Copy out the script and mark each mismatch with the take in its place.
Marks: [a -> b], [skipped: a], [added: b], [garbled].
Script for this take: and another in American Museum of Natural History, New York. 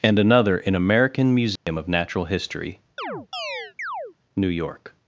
and another in American Museum of Natural History, New York.